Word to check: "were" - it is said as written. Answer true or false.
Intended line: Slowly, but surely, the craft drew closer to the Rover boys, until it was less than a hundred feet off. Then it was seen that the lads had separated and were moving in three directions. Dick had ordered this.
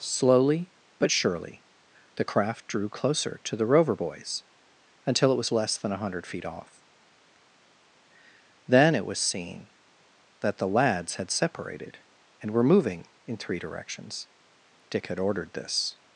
true